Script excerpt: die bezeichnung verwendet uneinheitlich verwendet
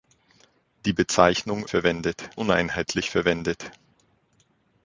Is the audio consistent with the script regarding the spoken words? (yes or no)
yes